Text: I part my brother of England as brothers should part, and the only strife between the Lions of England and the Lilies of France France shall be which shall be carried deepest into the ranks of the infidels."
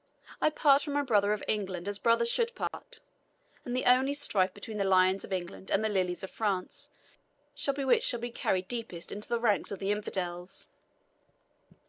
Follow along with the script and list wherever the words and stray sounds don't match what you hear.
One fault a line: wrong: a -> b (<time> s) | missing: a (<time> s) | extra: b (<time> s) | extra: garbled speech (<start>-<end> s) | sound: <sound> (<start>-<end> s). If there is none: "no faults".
extra: from (0.8 s)
sound: dropout (2.7-2.7 s)
missing: France (6.9 s)